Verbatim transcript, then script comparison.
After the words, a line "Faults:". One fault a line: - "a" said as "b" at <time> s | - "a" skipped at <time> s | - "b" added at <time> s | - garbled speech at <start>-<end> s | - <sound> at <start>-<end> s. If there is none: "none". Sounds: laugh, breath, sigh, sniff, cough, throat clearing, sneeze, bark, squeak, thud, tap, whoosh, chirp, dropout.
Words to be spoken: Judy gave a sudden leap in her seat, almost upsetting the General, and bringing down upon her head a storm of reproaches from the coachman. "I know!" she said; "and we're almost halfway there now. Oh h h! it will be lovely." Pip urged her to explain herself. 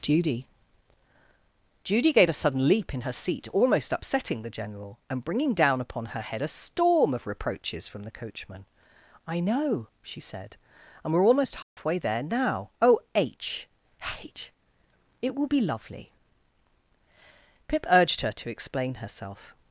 Judy judy gave a sudden leap in her seat, almost upsetting the General, and bringing down upon her head a storm of reproaches from the coachman. "I know!" she said; "and we're almost halfway there now. Oh h h! it will be lovely." Pip urged her to explain herself.
Faults:
- "judy" added at 1.8 s
- dropout at 11.6-11.8 s